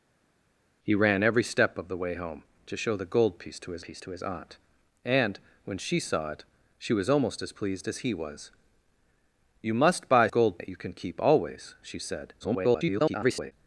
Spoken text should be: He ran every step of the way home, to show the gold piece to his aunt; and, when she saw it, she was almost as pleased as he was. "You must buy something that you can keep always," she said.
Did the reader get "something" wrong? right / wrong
wrong